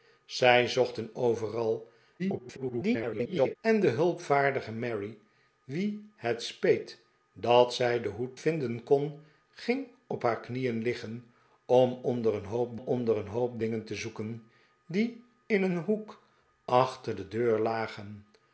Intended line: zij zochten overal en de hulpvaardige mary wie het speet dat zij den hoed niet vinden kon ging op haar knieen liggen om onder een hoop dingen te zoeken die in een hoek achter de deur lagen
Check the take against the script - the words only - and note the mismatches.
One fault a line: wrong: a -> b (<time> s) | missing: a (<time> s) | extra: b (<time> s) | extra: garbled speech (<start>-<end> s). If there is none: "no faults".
extra: garbled speech (2.2-3.6 s)
missing: niet (8.4 s)
extra: onder een hoop (12.7 s)